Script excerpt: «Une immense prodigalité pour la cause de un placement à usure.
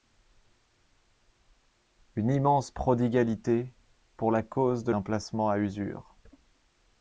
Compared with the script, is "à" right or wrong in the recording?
right